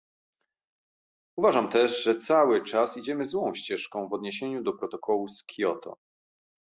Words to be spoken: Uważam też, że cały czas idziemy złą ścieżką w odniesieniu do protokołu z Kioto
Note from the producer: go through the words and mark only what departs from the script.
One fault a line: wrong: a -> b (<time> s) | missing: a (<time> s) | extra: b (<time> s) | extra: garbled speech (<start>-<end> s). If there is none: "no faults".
no faults